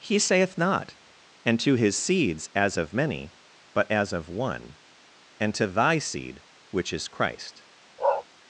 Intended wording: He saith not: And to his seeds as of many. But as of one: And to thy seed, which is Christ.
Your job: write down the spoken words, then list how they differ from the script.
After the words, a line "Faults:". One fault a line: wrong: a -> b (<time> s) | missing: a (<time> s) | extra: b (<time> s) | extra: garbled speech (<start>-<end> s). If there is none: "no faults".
He saith not: And to his seeds as of many. But as of one: And to thy seed, which is Christ.
Faults:
no faults